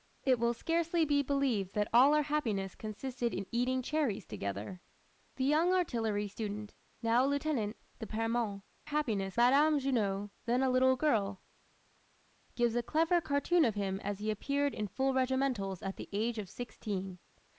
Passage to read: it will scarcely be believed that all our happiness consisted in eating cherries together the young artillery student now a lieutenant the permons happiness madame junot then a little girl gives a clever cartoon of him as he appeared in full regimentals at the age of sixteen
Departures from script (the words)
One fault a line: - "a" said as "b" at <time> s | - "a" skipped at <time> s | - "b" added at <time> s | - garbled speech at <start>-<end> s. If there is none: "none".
none